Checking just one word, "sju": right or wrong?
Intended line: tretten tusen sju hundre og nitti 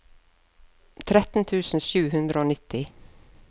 right